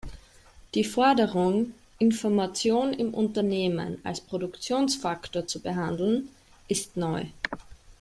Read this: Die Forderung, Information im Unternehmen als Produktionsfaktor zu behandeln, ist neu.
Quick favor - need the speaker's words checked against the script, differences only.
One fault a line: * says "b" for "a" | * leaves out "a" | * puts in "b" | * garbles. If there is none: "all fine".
all fine